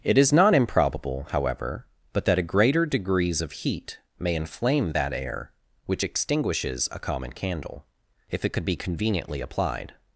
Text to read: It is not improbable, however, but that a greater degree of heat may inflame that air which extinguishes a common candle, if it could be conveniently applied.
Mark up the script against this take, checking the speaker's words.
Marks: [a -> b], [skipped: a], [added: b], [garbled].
It is not improbable, however, but that a greater [degree -> degrees] of heat may inflame that air which extinguishes a common candle, if it could be conveniently applied.